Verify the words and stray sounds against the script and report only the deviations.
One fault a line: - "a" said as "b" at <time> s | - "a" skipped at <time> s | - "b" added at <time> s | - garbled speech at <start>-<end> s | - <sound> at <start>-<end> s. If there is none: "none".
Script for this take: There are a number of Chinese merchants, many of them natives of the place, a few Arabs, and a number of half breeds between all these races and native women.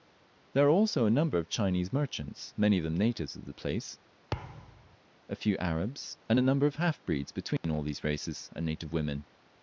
- "also" added at 0.7 s
- thud at 4.3-5.0 s
- dropout at 7.6-7.6 s